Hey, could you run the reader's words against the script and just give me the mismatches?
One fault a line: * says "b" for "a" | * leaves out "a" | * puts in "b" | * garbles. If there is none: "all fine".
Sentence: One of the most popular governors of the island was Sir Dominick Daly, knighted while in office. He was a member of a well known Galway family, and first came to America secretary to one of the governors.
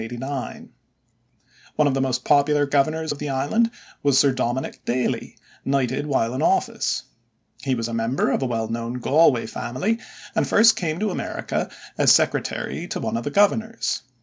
* puts in "as"